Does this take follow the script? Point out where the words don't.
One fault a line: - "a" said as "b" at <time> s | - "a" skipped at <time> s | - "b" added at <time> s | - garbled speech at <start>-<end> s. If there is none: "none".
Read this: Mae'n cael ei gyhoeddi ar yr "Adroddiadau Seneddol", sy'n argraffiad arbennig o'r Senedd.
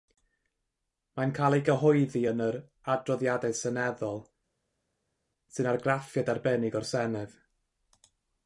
- "ar" said as "yn" at 2.3 s